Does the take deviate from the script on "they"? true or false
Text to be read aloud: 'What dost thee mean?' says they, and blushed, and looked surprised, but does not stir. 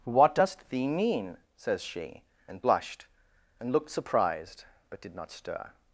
true